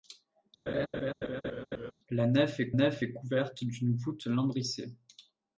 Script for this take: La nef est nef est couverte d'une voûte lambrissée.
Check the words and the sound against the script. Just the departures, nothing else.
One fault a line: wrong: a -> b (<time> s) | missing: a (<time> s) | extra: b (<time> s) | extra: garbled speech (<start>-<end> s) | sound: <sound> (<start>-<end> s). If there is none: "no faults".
sound: laugh (0.7-1.9 s)